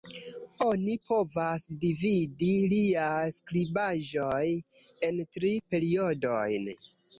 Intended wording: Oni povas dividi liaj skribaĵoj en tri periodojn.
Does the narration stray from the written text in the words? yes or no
no